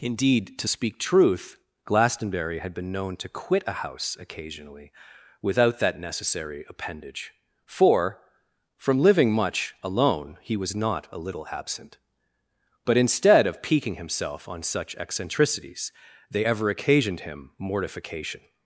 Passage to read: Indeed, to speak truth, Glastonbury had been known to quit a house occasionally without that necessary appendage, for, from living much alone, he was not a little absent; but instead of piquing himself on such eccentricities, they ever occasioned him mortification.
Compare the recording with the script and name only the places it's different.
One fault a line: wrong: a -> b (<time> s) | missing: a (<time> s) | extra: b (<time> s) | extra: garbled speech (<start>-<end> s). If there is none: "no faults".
no faults